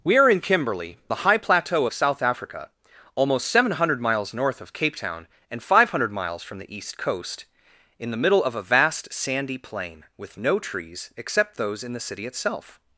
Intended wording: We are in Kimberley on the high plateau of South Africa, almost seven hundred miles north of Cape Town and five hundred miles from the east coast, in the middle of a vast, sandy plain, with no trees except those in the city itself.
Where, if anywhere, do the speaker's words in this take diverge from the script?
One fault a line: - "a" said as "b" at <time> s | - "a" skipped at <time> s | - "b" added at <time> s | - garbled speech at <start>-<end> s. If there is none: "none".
- "on" skipped at 1.0 s